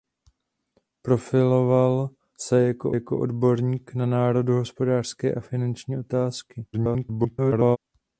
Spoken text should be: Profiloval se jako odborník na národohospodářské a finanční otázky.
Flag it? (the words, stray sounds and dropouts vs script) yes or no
yes